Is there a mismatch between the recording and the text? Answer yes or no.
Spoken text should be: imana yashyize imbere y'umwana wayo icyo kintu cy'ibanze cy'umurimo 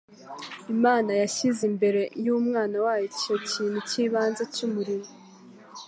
no